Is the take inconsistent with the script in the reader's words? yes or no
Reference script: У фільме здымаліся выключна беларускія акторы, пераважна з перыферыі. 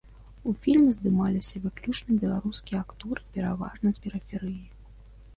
no